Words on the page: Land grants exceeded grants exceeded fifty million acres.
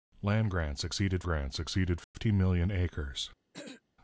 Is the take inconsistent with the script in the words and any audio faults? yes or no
yes